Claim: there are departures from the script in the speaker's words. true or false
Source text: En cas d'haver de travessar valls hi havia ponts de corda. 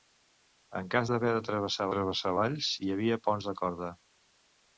true